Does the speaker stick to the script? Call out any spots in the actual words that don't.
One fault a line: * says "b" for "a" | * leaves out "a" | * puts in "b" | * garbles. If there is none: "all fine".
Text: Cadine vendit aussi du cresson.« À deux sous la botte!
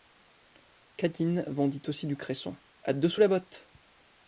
all fine